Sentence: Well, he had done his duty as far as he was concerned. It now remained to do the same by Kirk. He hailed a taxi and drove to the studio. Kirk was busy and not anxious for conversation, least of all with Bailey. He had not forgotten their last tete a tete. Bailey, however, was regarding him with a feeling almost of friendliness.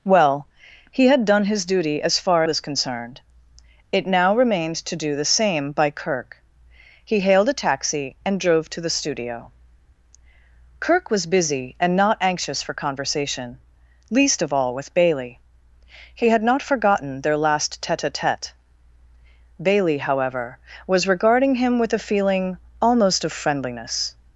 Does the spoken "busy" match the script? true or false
true